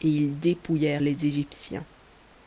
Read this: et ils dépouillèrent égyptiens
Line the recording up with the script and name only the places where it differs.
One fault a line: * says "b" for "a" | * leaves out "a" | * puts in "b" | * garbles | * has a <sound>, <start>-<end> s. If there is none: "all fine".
* puts in "les"